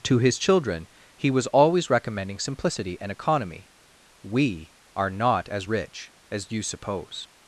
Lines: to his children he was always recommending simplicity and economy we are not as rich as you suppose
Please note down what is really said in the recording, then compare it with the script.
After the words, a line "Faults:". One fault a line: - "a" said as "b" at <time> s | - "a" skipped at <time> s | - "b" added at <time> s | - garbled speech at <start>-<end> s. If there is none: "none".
to his children he was always recommending simplicity and economy we are not as rich as you suppose
Faults:
none